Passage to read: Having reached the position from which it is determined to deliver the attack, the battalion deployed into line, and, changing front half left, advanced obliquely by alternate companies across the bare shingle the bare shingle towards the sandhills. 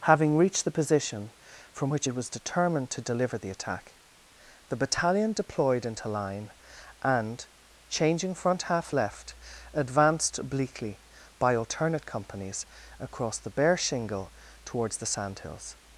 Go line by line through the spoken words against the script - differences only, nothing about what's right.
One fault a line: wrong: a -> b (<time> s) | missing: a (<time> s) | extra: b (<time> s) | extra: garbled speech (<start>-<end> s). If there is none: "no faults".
wrong: is -> was (2.1 s)
missing: the bare shingle (14.3 s)